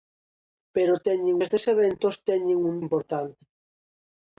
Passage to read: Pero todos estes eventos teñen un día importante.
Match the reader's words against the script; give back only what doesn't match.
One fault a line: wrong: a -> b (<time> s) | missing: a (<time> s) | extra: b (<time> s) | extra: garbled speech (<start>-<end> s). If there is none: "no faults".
wrong: todos -> teñen (1.1 s)
missing: día (2.8 s)